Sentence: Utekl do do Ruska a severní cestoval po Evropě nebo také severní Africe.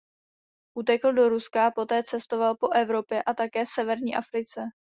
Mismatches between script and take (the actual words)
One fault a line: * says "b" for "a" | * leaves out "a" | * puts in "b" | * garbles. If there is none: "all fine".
* leaves out "do"
* says "poté" for "severní"
* says "a" for "nebo"